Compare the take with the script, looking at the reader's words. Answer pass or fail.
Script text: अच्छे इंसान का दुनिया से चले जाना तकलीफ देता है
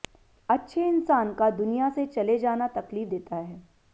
pass